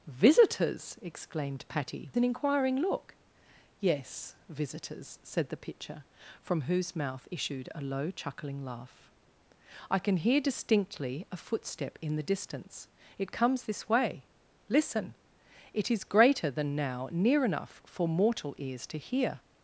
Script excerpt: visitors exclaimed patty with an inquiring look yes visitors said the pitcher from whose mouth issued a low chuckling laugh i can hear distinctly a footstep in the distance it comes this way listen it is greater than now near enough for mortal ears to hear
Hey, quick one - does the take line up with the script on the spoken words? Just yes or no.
no